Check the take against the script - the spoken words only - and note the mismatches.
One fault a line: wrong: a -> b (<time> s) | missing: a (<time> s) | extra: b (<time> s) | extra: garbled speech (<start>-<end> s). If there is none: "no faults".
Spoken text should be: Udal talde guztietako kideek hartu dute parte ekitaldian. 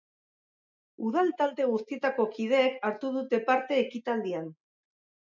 no faults